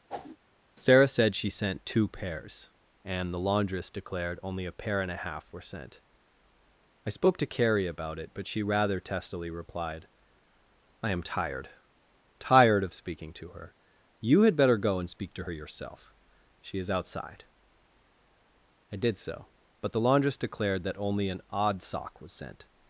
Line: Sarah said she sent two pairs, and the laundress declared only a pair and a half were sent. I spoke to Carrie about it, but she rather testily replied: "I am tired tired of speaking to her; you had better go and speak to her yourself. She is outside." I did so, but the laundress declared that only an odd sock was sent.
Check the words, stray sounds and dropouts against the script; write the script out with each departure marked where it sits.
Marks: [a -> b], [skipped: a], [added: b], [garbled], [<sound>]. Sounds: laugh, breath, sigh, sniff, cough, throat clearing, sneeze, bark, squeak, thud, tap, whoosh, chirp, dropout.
[whoosh] Sarah said she sent two pairs, and the laundress declared only a pair and a half were sent. I spoke to Carrie about it, but she rather testily replied: "I am tired tired of speaking to her; you had better go and speak to her yourself. She is outside." I did so, but the laundress declared that only an odd sock was sent.